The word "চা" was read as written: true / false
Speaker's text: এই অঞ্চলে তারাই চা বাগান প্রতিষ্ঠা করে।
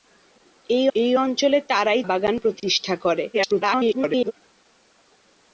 false